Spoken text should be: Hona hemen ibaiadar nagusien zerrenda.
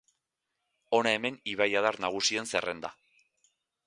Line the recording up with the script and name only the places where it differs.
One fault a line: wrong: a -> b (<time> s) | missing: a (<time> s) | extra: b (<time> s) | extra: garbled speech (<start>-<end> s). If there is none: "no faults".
no faults